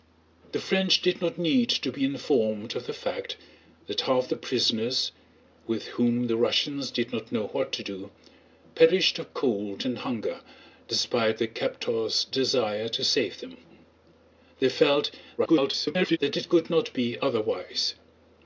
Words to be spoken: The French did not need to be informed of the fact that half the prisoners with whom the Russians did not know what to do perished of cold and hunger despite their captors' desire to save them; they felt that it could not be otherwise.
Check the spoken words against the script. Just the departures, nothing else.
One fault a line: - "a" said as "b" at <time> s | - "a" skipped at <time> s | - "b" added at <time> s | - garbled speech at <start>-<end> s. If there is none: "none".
- garbled speech at 15.4-16.2 s